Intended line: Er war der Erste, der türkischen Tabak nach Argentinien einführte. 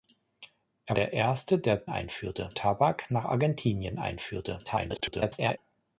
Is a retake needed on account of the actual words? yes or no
yes